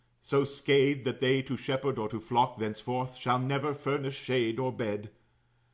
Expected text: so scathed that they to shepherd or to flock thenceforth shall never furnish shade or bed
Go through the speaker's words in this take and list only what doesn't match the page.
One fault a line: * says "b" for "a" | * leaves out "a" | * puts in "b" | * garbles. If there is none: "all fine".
all fine